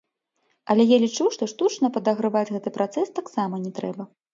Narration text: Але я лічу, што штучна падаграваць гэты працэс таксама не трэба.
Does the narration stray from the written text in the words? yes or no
no